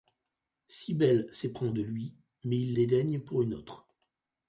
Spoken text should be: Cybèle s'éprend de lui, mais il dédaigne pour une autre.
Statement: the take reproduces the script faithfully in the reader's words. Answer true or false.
true